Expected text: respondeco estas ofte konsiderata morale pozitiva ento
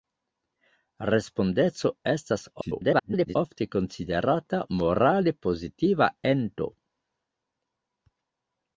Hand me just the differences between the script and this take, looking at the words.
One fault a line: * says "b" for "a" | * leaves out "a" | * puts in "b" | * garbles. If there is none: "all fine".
* garbles